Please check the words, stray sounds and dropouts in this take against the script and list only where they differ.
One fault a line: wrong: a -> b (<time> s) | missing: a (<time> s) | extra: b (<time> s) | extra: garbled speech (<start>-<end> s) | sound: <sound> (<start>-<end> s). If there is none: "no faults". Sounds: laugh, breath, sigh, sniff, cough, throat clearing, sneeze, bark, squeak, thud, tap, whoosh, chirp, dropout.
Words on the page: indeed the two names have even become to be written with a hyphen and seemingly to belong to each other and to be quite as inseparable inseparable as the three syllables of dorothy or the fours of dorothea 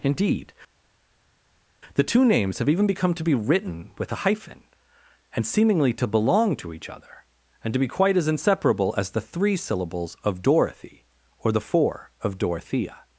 missing: inseparable (8.9 s)
wrong: fours -> four (11.6 s)